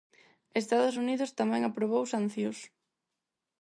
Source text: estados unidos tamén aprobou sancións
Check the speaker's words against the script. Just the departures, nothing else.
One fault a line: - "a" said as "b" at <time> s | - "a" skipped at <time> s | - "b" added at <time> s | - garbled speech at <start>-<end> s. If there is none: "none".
none